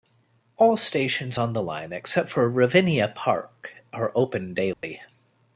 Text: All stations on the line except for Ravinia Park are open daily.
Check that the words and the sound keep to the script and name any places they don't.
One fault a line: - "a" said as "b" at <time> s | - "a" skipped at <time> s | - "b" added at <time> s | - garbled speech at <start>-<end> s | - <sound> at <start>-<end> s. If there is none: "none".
- dropout at 4.7-4.8 s